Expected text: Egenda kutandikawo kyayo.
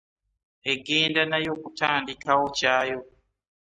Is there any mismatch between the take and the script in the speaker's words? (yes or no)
yes